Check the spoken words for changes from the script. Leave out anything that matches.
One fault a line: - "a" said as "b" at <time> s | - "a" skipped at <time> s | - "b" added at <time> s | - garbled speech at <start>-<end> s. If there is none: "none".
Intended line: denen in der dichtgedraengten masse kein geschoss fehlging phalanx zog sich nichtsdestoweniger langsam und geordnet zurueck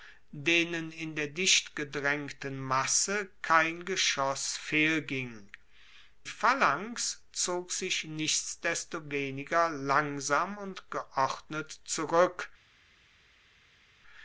none